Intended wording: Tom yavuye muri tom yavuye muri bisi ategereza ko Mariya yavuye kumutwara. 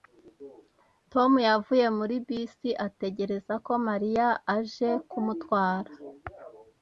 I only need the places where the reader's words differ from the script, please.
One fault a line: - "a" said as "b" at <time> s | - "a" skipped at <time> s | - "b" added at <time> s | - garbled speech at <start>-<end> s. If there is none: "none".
- "tom yavuye muri" skipped at 2.1 s
- "yavuye" said as "aje" at 4.5 s